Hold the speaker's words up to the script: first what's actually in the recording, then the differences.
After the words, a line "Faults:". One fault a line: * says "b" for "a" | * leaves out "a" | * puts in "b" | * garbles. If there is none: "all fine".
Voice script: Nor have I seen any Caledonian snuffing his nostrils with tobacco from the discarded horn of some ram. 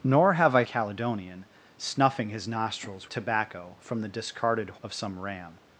Nor have I Caledonian snuffing his nostrils tobacco from the discarded of some ram.
Faults:
* leaves out "seen any"
* leaves out "with"
* leaves out "horn"